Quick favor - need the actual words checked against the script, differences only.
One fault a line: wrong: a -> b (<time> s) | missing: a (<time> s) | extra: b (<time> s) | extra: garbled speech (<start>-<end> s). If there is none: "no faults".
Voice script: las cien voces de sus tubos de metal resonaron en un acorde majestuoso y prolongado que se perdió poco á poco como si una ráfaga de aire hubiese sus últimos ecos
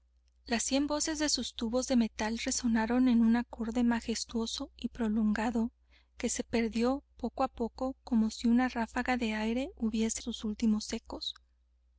no faults